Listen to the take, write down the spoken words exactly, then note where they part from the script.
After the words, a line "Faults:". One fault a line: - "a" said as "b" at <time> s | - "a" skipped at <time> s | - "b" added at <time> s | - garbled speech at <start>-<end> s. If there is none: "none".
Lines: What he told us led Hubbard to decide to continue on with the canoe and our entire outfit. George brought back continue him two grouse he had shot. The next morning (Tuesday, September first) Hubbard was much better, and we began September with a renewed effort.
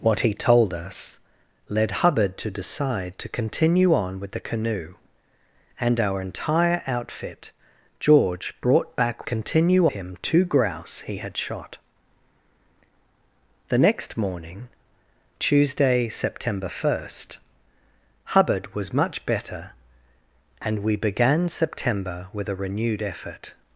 What he told us led Hubbard to decide to continue on with the canoe and our entire outfit. George brought back continue him two grouse he had shot. The next morning (Tuesday, September first) Hubbard was much better, and we began September with a renewed effort.
Faults:
none